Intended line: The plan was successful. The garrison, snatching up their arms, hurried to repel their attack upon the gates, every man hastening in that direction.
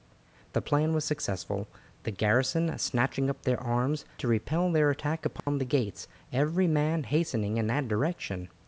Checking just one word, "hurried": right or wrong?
wrong